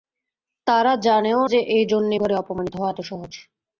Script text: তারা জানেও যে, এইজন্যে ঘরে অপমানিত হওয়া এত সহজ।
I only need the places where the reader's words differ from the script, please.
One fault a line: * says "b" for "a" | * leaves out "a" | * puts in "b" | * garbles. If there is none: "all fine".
all fine